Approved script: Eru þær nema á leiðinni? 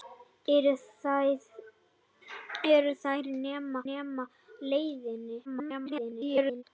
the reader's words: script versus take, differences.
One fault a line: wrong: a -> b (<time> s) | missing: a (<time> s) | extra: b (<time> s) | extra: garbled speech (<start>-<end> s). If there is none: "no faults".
extra: nema (3.9 s)
extra: garbled speech (5.4-6.6 s)